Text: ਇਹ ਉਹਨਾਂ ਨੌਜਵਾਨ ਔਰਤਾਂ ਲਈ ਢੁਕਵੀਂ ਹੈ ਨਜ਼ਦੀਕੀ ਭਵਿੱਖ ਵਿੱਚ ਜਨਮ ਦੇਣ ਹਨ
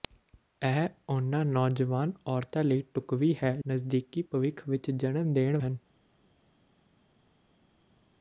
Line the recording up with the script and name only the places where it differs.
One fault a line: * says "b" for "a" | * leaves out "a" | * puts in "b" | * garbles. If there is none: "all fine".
all fine